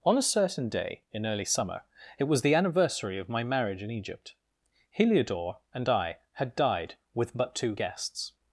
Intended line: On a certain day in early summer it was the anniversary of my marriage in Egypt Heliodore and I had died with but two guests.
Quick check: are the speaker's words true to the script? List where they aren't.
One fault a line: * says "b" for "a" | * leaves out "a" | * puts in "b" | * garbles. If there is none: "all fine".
all fine